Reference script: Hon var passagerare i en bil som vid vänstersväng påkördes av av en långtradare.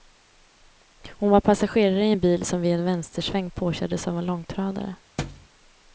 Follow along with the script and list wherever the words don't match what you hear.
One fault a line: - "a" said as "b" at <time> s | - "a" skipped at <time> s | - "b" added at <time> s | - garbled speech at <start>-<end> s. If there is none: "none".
- "en" added at 2.7 s
- "av" skipped at 4.2 s